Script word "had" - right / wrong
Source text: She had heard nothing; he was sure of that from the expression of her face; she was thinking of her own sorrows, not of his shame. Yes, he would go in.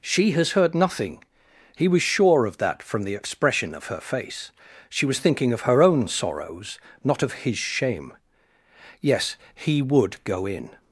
wrong